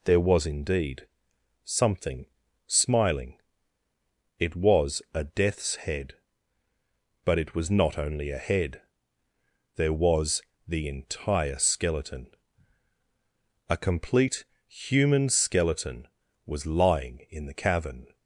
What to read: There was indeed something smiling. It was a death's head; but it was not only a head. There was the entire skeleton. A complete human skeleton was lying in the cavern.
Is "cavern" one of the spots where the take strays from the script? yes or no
no